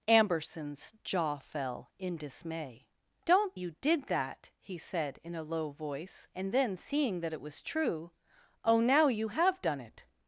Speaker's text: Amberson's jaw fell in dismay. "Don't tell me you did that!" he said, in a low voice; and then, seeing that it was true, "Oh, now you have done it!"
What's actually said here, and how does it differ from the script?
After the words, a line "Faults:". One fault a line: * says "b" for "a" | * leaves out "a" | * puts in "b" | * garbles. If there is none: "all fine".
Amberson's jaw fell in dismay. "Don't you did that!" he said, in a low voice; and then, seeing that it was true, "Oh, now you have done it!"
Faults:
* leaves out "tell me"